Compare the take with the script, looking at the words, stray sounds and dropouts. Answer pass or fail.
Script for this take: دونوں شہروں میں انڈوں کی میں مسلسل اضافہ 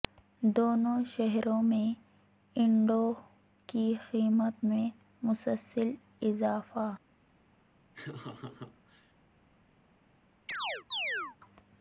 fail